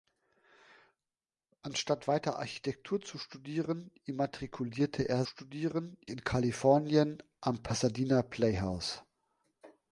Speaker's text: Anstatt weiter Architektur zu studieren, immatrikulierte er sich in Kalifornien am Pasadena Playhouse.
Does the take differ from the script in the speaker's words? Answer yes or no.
yes